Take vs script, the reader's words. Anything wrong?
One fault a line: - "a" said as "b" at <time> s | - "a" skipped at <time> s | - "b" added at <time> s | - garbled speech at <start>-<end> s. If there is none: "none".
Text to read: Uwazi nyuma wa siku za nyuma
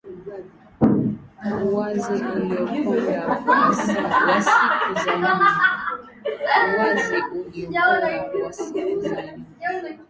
- "nyuma" said as "uliokonda" at 2.1 s